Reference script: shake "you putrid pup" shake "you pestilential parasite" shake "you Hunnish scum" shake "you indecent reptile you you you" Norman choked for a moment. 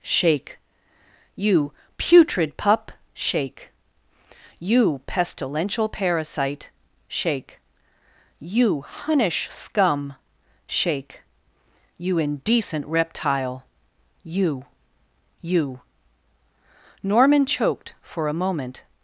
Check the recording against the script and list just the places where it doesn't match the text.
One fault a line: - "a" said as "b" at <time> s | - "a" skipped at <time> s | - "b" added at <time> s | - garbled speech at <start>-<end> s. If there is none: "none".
- "you" skipped at 15.8 s